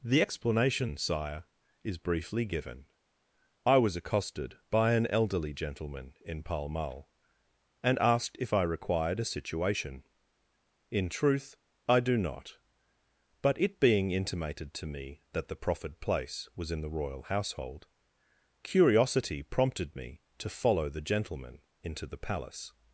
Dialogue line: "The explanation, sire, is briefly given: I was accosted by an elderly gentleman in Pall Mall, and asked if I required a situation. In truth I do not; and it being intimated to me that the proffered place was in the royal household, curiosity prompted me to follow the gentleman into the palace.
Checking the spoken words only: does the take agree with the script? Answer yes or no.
no